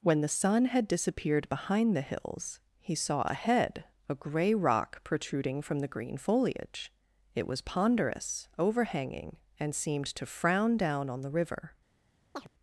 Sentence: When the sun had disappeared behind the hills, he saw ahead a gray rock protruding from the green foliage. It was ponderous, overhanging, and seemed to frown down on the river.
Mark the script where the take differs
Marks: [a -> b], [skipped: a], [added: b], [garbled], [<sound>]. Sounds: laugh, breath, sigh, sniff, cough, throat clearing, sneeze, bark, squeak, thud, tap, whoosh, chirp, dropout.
When the sun had disappeared behind the hills, he saw ahead a gray rock protruding from the green foliage. It was ponderous, overhanging, and seemed to frown down on the river. [chirp]